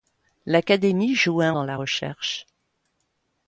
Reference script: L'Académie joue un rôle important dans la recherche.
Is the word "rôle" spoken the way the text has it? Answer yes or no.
no